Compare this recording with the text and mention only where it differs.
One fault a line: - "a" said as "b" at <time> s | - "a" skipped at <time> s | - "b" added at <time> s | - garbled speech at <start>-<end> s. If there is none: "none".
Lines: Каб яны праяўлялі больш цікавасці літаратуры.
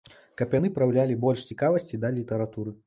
- "да" added at 2.0 s